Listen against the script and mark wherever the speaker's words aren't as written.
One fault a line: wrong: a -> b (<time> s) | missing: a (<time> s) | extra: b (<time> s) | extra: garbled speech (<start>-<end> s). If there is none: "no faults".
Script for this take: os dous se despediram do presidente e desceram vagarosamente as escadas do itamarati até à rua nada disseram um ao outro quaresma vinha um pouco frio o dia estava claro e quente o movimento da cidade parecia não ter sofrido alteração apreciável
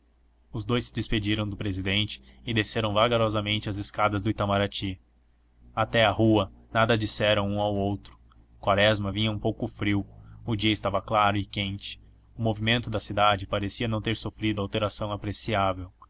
no faults